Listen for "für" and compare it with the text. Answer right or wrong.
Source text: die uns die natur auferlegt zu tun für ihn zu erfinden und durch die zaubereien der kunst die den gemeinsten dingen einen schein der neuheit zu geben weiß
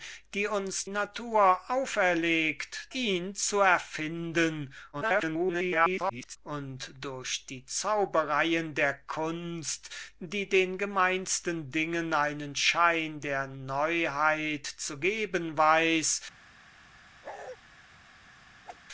wrong